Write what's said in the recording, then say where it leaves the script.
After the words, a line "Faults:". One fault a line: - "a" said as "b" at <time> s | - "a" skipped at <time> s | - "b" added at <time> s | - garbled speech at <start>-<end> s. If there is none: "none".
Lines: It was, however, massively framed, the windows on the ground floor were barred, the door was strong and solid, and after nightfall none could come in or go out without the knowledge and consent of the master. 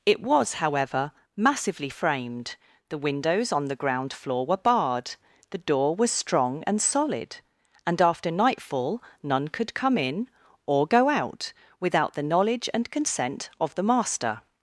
It was, however, massively framed, the windows on the ground floor were barred, the door was strong and solid, and after nightfall none could come in or go out without the knowledge and consent of the master.
Faults:
none